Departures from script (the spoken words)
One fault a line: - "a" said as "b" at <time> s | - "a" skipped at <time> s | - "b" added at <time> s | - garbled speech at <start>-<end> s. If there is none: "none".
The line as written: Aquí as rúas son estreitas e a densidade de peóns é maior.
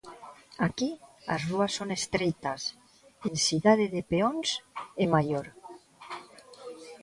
- "a" skipped at 3.3 s